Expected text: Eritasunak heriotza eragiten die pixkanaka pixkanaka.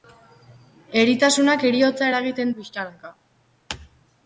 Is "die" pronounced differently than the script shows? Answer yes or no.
yes